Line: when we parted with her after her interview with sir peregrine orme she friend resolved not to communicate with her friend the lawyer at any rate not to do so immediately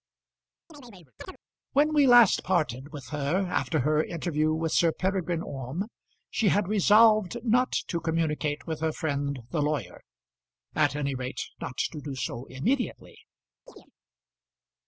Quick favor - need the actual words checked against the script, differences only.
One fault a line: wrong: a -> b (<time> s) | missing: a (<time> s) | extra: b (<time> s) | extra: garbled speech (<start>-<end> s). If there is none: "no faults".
extra: last (2.1 s)
wrong: friend -> had (6.5 s)